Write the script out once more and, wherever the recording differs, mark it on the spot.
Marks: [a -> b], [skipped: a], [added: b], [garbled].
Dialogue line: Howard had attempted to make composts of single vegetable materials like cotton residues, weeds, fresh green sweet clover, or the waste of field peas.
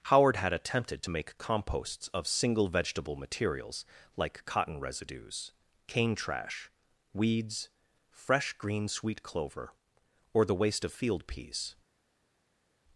Howard had attempted to make composts of single vegetable materials like cotton residues, [added: cane trash] weeds, fresh green sweet clover, or the waste of field peas.